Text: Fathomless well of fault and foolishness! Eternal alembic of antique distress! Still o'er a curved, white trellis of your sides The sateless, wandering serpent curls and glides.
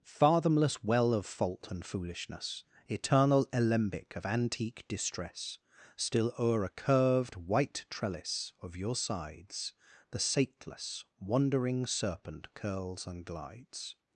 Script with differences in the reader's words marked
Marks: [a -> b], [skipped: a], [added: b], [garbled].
Fathomless well of fault and foolishness! Eternal alembic of antique distress! Still o'er a curved, white trellis of your sides The sateless, wandering serpent curls and glides.